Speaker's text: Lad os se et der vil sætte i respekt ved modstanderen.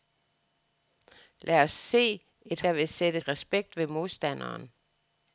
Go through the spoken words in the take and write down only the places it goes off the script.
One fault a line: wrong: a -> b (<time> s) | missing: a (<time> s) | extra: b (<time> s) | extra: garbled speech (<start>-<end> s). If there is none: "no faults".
no faults